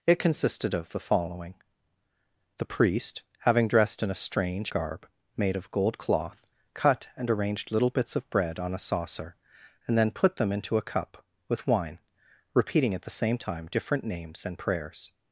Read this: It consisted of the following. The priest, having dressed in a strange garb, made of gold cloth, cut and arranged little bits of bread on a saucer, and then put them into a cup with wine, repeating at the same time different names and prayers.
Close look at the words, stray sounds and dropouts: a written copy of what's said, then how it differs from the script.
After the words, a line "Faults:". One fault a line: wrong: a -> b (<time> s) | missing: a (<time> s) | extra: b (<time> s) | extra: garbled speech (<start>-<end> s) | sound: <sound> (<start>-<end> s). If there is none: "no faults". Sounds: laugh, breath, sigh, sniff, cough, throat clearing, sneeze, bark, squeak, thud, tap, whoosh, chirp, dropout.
It consisted of the following. The priest, having dressed in a strange garb, made of gold cloth, cut and arranged little bits of bread on a saucer, and then put them into a cup with wine, repeating at the same time different names and prayers.
Faults:
no faults